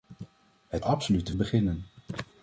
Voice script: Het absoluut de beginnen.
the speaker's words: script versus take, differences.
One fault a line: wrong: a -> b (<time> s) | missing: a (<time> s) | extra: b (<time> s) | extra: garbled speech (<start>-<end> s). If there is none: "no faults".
no faults